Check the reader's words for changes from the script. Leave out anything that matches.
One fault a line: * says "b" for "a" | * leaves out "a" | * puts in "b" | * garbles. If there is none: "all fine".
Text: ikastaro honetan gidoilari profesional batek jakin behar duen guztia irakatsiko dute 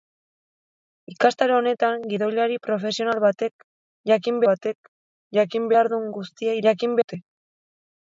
* puts in "batek jakin"
* says "jakin" for "irakatsiko"